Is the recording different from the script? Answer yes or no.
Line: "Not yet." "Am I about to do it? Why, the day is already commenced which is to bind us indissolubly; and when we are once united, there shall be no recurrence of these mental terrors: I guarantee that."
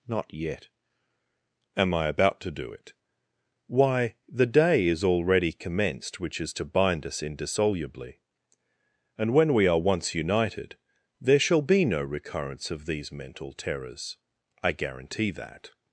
no